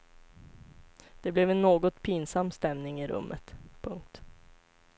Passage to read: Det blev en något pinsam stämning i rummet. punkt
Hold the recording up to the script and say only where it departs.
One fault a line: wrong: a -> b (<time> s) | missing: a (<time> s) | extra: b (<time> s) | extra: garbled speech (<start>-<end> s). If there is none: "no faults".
no faults